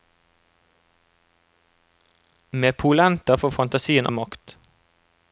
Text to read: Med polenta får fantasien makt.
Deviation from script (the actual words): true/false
false